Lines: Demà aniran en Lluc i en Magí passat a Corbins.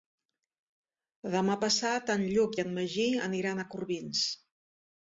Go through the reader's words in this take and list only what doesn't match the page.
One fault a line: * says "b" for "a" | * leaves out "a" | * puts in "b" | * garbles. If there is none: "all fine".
* says "passat" for "aniran"
* says "aniran" for "passat"